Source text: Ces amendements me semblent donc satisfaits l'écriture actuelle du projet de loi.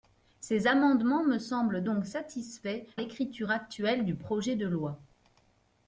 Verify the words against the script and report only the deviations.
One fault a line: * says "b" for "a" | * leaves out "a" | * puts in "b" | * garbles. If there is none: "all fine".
all fine